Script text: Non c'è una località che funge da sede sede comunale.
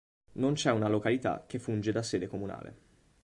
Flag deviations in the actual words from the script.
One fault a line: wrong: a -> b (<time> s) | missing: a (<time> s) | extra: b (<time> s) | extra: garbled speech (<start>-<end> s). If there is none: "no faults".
missing: sede (2.2 s)